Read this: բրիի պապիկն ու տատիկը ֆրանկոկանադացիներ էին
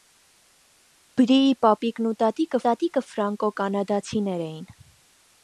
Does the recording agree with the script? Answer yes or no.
no